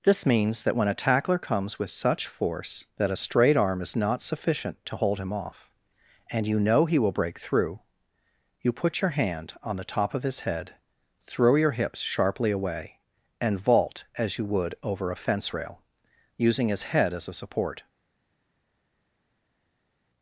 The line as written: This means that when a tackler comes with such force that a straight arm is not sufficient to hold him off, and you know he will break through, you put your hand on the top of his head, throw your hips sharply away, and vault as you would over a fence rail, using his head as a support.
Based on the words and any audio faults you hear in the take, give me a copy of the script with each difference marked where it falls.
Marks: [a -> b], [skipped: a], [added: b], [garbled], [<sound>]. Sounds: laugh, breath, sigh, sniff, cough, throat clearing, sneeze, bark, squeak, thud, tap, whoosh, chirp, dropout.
This means that when a tackler comes with such force that a straight arm is not sufficient to hold him off, and you know he will break through, you put your hand on the top of his head, throw your hips sharply away, and vault as you would over a fence rail, using his head as a support.